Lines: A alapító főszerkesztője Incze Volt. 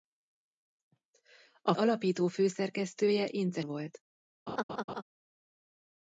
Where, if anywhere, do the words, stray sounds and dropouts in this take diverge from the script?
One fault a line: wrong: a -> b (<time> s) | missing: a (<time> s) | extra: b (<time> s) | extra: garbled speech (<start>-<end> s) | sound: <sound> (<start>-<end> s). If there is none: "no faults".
sound: laugh (4.5-5.0 s)